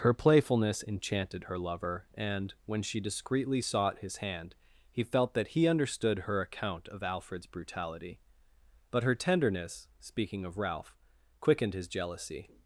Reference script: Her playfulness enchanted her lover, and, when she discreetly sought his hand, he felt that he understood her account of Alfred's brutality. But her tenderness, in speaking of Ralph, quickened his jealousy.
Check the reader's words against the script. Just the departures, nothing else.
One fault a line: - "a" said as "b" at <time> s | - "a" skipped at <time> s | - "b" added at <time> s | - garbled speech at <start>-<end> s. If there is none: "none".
- "in" skipped at 9.9 s